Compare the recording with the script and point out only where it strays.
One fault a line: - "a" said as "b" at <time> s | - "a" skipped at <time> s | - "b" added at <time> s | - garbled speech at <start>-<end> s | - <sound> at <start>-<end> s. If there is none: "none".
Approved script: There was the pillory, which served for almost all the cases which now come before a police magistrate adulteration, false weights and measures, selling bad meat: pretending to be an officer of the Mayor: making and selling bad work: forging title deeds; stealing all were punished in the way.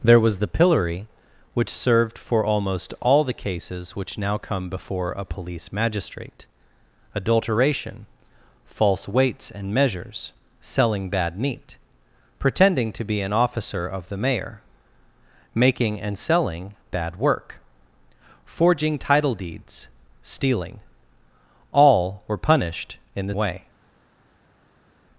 none